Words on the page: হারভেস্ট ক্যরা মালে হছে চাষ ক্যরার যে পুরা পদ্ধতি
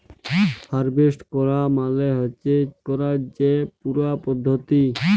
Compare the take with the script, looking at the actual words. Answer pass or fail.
fail